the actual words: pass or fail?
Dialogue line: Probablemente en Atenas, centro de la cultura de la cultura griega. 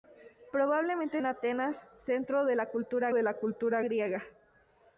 pass